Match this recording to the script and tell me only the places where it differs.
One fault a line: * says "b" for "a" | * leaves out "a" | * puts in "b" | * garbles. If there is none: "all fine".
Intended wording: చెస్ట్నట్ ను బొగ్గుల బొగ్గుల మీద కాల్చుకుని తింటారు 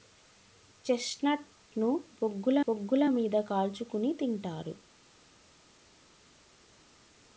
all fine